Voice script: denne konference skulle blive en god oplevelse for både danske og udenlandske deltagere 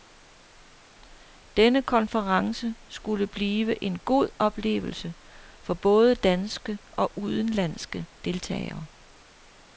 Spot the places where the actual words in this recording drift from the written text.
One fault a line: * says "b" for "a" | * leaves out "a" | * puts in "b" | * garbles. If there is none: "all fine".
all fine